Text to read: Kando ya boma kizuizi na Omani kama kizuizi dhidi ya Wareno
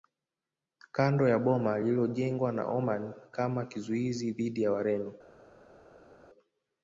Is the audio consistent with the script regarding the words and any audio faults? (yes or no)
no